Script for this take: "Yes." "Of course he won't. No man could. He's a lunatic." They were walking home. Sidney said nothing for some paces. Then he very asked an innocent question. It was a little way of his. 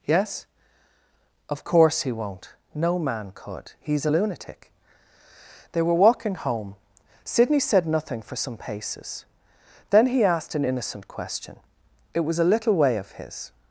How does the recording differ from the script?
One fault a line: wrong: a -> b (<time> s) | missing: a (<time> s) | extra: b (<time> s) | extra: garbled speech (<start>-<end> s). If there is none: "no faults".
missing: very (10.2 s)